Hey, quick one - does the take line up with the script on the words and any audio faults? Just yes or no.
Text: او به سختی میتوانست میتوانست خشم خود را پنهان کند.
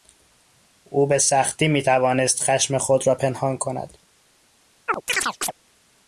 no